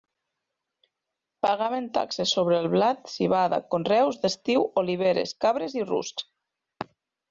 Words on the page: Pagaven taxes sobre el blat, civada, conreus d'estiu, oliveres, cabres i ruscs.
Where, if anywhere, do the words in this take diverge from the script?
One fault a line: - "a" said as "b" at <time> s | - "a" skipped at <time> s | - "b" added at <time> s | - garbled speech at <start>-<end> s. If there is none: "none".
none